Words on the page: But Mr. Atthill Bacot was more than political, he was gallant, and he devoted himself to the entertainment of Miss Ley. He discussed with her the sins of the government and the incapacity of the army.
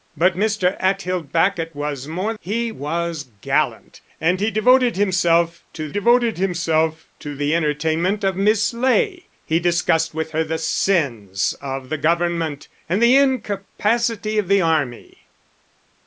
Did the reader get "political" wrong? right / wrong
wrong